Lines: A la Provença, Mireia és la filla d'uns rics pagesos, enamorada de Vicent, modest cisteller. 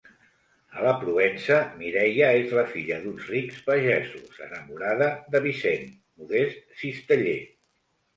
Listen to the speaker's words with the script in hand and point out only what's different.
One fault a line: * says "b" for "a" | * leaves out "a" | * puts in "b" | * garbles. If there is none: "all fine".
all fine